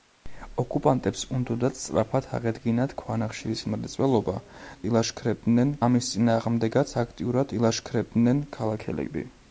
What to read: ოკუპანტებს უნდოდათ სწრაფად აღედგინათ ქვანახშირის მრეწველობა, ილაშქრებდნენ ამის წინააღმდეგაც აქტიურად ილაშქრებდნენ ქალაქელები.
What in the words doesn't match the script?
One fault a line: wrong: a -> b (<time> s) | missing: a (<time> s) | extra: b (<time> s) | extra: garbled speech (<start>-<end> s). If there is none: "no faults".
no faults